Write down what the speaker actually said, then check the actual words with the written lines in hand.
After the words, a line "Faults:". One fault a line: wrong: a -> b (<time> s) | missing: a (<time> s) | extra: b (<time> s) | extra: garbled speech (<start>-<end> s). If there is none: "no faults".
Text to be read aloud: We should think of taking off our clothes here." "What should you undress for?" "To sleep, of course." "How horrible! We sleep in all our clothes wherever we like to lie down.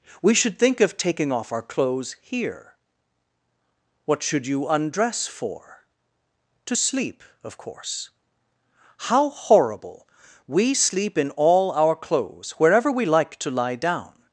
We should think of taking off our clothes here." "What should you undress for?" "To sleep, of course." "How horrible! We sleep in all our clothes wherever we like to lie down.
Faults:
no faults